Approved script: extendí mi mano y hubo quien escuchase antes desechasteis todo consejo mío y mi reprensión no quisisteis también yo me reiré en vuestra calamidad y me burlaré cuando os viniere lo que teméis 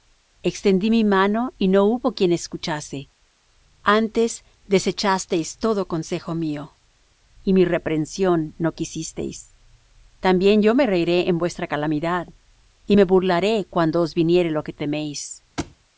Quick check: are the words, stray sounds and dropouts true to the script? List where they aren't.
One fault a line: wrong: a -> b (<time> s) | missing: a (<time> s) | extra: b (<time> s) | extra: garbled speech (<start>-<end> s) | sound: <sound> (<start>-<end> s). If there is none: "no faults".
extra: no (1.7 s)
sound: thud (15.6-15.8 s)